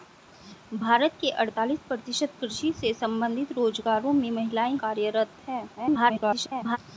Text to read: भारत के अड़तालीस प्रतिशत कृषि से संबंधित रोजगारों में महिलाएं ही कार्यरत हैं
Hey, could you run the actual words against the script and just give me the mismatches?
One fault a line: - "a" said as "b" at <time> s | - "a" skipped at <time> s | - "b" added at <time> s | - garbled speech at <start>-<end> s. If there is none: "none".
- "ही" skipped at 4.8 s
- garbled speech at 5.8-6.8 s